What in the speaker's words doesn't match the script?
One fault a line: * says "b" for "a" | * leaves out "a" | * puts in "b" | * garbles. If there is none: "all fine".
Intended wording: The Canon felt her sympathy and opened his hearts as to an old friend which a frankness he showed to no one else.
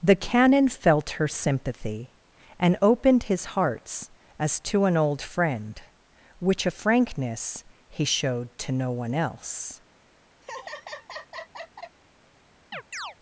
all fine